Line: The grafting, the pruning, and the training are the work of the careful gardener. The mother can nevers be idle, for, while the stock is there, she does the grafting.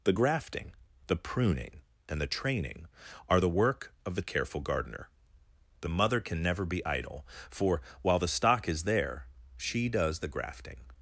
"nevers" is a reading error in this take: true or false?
true